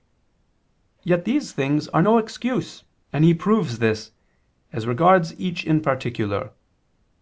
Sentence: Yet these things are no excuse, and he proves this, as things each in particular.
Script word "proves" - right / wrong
right